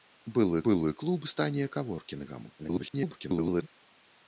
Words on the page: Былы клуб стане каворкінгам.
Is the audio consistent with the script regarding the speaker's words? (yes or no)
no